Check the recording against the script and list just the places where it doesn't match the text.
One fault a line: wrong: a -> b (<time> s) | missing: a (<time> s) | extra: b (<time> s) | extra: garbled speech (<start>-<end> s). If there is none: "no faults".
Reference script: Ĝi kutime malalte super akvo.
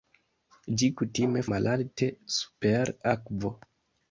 no faults